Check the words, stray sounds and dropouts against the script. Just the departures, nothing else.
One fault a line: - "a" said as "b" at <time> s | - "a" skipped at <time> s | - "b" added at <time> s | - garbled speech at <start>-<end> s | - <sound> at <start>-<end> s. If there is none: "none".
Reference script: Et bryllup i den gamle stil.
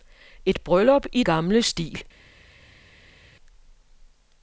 - "den" skipped at 1.2 s